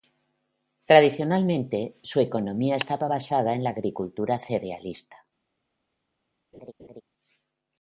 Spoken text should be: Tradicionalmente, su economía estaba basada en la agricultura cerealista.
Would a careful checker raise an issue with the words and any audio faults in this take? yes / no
yes